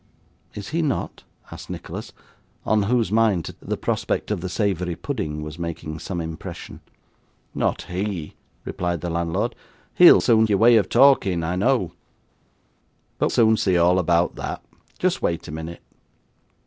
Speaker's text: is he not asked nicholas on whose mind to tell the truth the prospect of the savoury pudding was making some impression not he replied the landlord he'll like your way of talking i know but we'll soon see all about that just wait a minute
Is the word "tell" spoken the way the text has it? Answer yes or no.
no